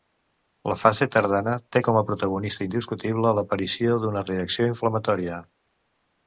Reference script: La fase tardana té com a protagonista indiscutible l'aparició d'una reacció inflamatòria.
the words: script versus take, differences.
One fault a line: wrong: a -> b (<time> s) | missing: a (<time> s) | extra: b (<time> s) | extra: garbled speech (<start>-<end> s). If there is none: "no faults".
no faults